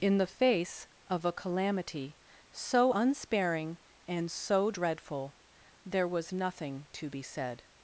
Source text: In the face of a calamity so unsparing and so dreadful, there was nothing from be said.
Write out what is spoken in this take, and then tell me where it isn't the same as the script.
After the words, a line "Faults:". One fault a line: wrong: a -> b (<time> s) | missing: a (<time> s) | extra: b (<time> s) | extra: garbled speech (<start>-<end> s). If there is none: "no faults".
In the face of a calamity so unsparing and so dreadful, there was nothing to be said.
Faults:
wrong: from -> to (6.9 s)